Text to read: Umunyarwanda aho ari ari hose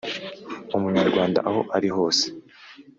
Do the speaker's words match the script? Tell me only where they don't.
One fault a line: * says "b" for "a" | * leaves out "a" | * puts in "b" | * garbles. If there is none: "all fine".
* leaves out "ari"